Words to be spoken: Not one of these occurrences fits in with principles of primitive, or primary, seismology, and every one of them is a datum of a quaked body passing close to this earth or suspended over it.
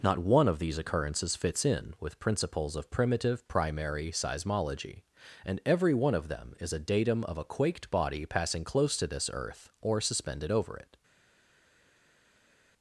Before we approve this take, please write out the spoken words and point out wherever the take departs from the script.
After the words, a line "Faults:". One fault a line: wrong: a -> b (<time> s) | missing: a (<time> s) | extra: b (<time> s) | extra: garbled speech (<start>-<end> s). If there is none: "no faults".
Not one of these occurrences fits in with principles of primitive, primary, seismology, and every one of them is a datum of a quaked body passing close to this earth or suspended over it.
Faults:
missing: or (3.5 s)